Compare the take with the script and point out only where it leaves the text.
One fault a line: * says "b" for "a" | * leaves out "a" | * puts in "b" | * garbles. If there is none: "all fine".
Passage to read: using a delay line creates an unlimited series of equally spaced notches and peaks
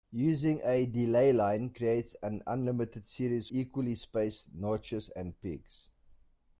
* leaves out "of"